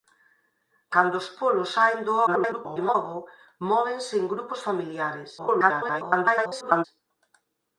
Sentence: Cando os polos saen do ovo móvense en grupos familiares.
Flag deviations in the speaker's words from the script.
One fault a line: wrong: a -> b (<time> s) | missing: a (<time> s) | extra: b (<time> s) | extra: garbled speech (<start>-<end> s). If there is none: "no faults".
extra: garbled speech (2.3-3.0 s)
extra: garbled speech (5.4-6.9 s)